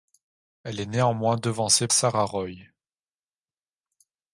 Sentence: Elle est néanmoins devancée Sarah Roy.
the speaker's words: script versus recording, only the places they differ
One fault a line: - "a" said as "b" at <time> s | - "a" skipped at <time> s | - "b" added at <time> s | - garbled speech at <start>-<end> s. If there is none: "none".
none